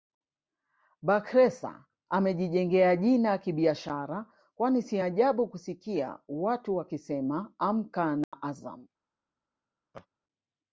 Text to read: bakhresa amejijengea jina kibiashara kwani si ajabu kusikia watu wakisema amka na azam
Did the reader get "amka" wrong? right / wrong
right